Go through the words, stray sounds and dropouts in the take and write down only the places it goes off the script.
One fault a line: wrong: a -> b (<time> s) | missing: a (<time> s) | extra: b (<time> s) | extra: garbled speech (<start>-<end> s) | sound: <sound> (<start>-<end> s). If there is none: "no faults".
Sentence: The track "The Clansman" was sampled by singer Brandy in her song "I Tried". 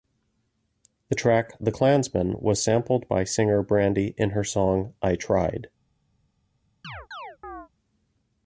sound: chirp (6.8-7.7 s)